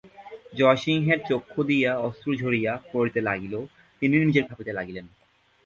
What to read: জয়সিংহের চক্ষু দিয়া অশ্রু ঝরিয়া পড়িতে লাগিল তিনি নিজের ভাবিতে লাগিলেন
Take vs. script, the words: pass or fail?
pass